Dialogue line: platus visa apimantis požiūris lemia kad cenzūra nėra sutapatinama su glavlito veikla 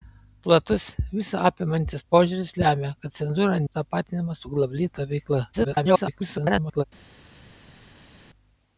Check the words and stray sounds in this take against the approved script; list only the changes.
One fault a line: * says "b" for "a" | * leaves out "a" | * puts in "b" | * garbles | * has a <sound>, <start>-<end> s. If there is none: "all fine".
* leaves out "nėra"
* garbles